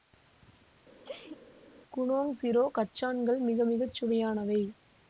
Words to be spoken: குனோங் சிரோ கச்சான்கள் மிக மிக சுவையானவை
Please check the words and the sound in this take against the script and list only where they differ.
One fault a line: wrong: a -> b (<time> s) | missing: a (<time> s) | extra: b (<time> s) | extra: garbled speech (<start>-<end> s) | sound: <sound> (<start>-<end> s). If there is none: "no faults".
sound: sneeze (1.0-1.4 s)